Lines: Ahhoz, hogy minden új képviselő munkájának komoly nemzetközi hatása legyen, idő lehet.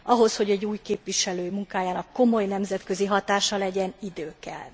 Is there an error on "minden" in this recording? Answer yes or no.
yes